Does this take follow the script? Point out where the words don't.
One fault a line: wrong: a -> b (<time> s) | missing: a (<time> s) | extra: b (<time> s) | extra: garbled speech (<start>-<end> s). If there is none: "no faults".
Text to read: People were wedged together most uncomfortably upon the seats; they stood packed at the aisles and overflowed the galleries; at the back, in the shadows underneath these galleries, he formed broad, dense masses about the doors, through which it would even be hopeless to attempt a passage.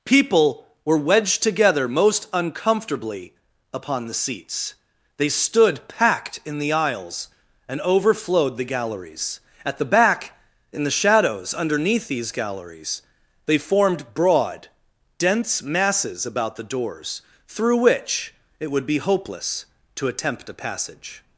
wrong: at -> in (6.4 s)
wrong: he -> they (13.4 s)
missing: even (18.9 s)